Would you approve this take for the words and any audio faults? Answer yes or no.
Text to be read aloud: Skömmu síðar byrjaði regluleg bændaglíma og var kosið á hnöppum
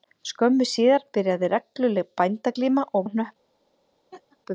no